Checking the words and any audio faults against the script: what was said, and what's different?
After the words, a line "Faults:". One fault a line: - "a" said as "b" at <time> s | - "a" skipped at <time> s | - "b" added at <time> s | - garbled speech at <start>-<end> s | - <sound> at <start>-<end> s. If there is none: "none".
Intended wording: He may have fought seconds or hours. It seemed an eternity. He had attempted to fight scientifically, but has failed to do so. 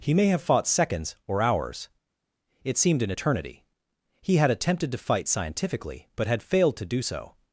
He may have fought seconds or hours. It seemed an eternity. He had attempted to fight scientifically, but had failed to do so.
Faults:
- "has" said as "had" at 6.3 s